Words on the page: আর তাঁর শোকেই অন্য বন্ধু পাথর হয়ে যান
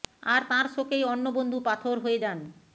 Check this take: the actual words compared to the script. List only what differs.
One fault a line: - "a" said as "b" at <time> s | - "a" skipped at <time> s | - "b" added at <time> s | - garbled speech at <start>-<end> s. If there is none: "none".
none